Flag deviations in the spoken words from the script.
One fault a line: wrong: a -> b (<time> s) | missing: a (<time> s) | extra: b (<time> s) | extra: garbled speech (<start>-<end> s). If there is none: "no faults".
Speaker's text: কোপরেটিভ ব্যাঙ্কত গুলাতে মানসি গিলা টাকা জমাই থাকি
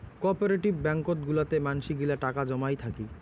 no faults